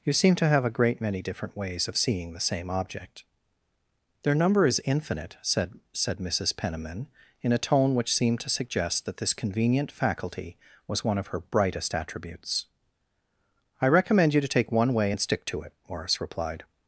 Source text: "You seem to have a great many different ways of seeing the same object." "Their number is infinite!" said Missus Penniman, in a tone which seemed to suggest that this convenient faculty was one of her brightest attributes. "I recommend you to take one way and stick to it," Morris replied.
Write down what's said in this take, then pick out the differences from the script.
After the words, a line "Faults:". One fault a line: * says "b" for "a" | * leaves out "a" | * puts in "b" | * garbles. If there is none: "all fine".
"You seem to have a great many different ways of seeing the same object." "Their number is infinite!" said said Missus Penniman, in a tone which seemed to suggest that this convenient faculty was one of her brightest attributes. "I recommend you to take one way and stick to it," Morris replied.
Faults:
* puts in "said"